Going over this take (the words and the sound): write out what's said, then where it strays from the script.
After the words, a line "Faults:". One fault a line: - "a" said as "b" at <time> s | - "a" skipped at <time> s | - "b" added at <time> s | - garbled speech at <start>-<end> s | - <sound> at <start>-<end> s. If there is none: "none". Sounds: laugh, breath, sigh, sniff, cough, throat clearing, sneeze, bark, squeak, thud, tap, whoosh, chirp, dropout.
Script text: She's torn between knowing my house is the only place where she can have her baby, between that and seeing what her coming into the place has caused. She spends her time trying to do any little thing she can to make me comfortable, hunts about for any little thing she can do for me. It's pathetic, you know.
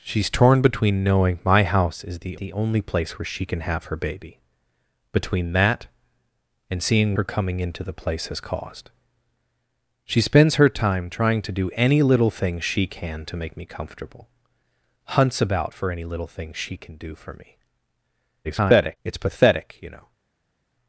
She's torn between knowing my house is the the only place where she can have her baby, between that and seeing her coming into the place has caused. She spends her time trying to do any little thing she can to make me comfortable, hunts about for any little thing she can do for me. [garbled] It's pathetic, you know.
Faults:
- "the" added at 2.4 s
- "what" skipped at 7.2 s
- garbled speech at 18.4-19.0 s